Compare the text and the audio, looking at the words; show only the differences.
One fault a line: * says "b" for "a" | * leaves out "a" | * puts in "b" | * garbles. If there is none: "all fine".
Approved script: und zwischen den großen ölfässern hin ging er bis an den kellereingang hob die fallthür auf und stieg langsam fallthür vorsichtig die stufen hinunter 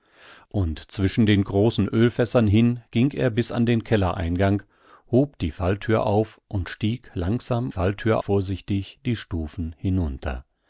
all fine